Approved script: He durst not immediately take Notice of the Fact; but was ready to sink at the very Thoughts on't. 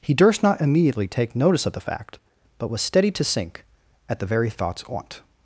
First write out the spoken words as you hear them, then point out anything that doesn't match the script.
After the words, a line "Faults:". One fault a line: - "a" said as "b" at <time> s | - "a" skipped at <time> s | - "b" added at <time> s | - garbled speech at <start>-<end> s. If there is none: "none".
He durst not immediately take Notice of the Fact; but was steady to sink at the very Thoughts on't.
Faults:
- "ready" said as "steady" at 2.8 s